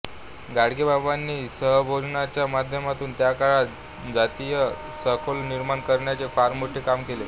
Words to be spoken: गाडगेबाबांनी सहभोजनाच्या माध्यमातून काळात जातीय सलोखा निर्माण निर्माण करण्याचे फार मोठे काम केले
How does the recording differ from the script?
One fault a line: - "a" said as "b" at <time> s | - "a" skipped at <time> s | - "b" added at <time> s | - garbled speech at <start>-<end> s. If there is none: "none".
- "त्या" added at 3.2 s
- "निर्माण" skipped at 5.8 s